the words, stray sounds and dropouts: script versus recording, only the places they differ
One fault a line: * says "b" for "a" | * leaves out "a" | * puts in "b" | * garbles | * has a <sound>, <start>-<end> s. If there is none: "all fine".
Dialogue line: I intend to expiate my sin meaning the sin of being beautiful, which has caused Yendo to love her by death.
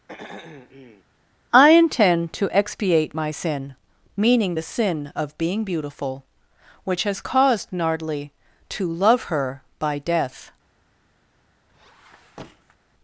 * has a throat clearing, 0.1-1.0 s
* says "Nardly" for "Yendo"
* has a squeak, 11.7-12.8 s